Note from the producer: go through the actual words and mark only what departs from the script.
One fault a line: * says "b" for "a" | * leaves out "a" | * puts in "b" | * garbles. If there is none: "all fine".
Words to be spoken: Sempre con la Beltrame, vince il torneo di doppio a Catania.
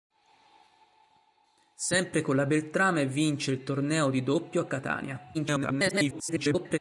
* garbles